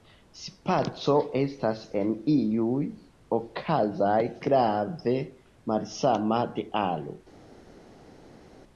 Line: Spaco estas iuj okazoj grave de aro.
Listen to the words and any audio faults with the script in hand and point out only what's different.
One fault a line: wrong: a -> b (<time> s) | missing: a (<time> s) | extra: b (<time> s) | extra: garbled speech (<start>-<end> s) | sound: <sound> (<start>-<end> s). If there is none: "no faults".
extra: en (2.0 s)
extra: malsama (5.7 s)